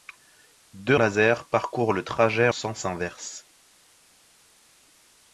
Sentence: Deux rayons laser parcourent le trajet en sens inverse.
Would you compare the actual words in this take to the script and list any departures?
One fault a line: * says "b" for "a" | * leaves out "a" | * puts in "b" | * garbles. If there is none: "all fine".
* leaves out "rayons"
* leaves out "en"